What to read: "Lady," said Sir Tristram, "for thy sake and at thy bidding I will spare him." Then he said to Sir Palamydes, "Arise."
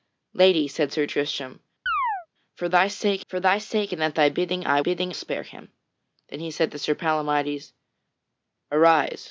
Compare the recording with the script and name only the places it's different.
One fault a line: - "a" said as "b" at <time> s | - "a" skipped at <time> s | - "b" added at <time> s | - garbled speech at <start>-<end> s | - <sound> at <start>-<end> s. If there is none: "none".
- chirp at 1.9-2.3 s
- "for thy sake" added at 3.3 s
- "will" said as "bidding" at 4.8 s